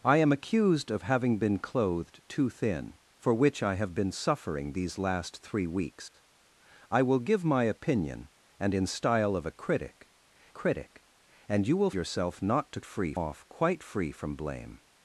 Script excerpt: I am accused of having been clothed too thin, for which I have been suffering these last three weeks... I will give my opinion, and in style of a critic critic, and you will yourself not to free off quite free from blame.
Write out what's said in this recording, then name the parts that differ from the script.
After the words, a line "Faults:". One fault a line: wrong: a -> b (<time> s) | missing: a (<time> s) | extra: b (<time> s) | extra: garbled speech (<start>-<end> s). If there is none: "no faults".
I am accused of having been clothed too thin, for which I have been suffering these last three weeks... I will give my opinion, and in style of a critic critic, and you will yourself not to free off quite free from blame.
Faults:
no faults